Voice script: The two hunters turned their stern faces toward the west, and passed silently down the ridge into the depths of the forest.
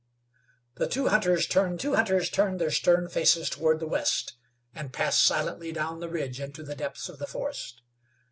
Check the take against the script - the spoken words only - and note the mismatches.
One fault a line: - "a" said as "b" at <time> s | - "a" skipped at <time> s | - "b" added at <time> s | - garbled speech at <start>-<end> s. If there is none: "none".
- "two hunters turned" added at 1.8 s